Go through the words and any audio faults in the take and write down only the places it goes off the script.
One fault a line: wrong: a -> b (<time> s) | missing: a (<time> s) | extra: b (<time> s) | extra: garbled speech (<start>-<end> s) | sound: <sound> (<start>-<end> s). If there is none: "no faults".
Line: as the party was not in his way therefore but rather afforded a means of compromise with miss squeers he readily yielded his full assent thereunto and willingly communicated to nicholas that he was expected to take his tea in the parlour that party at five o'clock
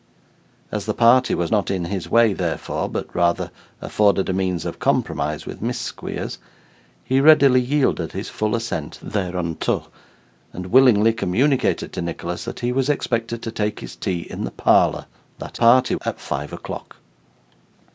no faults